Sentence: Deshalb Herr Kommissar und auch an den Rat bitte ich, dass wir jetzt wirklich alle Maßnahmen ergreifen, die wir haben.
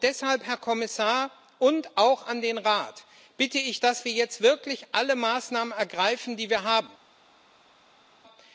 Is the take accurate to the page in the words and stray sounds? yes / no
yes